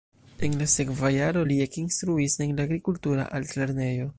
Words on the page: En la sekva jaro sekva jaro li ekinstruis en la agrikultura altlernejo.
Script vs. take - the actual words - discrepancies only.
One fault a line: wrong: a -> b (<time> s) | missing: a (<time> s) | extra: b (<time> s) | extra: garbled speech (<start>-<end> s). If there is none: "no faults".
missing: sekva jaro (1.4 s)